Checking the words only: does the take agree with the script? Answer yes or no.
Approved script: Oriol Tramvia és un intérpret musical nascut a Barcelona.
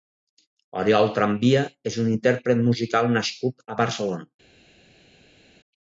yes